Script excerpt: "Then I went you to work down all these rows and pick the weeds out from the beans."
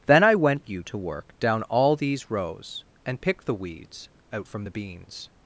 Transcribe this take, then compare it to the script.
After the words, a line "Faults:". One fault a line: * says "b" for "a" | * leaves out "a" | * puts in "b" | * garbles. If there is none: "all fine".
"Then I went you to work down all these rows and pick the weeds out from the beans."
Faults:
all fine